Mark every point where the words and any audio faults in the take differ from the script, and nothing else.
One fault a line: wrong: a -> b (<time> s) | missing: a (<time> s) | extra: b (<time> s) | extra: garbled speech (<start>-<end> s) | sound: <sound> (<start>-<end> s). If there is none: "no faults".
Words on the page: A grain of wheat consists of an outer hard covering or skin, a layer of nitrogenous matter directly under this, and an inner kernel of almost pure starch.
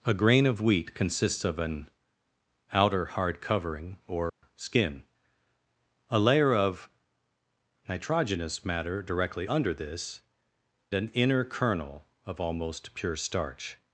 sound: dropout (4.3-4.4 s)
missing: and (10.2 s)